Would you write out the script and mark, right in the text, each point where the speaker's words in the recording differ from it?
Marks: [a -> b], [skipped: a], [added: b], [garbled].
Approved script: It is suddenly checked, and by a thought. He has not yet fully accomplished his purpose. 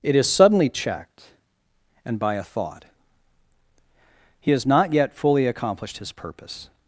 It is suddenly checked, and by a thought. He has not yet fully accomplished his purpose.